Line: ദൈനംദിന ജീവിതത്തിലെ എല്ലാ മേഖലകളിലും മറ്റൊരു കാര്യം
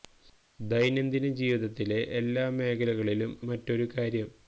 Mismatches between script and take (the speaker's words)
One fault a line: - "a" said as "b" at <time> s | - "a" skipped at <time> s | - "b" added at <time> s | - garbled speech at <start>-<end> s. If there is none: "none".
none